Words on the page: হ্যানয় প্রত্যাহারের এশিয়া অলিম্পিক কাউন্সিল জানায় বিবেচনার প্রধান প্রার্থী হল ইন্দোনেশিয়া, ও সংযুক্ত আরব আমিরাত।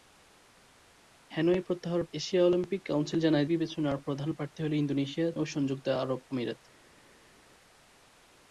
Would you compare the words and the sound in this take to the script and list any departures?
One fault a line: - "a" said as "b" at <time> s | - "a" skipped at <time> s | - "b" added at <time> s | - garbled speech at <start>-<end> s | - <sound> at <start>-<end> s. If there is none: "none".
none